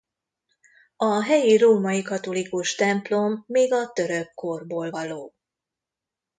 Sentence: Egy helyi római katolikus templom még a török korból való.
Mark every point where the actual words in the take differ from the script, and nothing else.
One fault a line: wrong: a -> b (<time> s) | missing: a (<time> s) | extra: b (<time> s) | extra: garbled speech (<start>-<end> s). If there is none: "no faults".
wrong: Egy -> A (0.9 s)